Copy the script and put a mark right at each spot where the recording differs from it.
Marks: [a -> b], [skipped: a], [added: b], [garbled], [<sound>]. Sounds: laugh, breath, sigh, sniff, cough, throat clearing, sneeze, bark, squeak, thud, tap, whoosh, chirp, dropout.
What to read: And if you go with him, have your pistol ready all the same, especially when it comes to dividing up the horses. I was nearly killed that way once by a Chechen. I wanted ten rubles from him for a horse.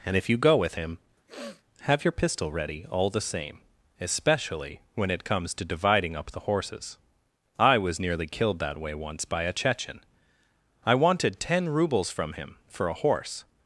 And if you go with him, [sniff] have your pistol ready all the same, especially when it comes to dividing up the horses. I was nearly killed that way once by a Chechen. I wanted ten rubles from him for a horse.